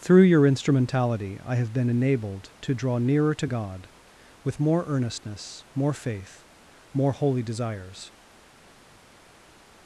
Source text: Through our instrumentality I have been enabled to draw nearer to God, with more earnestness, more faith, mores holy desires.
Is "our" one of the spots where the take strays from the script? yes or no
yes